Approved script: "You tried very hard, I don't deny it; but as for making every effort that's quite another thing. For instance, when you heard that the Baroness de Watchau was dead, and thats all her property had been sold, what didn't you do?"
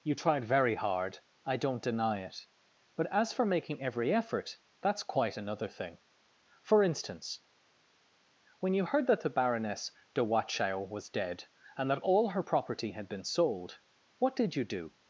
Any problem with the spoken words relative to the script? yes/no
yes